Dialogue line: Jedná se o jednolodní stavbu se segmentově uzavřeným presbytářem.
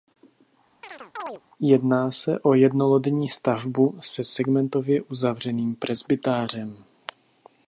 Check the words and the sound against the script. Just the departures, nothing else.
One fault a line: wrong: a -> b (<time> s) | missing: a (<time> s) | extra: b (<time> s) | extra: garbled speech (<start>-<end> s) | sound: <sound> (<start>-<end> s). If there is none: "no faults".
sound: chirp (0.8-1.4 s)